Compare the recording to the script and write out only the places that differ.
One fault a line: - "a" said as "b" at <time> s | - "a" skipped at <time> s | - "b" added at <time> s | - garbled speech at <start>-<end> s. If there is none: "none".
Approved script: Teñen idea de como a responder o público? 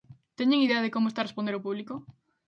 - "está" added at 1.1 s